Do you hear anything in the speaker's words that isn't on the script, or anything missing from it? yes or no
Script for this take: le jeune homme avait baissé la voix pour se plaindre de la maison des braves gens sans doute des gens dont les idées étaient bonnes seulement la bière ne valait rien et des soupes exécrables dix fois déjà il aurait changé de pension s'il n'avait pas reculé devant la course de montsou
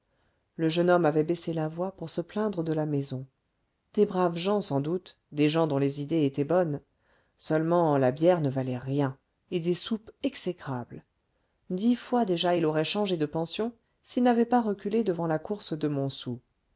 no